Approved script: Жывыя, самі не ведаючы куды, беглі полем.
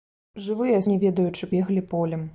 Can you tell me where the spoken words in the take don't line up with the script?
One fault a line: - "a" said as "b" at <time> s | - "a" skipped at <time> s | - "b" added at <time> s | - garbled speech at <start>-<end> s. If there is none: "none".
- "самі" skipped at 0.8 s
- "куды" skipped at 1.5 s